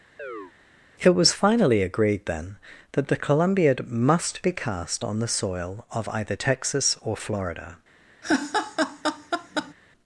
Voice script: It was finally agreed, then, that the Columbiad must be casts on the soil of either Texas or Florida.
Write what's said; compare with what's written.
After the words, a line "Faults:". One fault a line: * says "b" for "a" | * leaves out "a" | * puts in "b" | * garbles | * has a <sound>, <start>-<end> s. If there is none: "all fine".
It was finally agreed, then, that the Columbiad must be cast on the soil of either Texas or Florida.
Faults:
* has a chirp, 0.2-0.5 s
* says "cast" for "casts"
* has a laugh, 8.2-9.7 s